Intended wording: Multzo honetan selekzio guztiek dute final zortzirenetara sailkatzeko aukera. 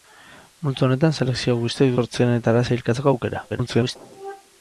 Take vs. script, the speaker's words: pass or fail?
fail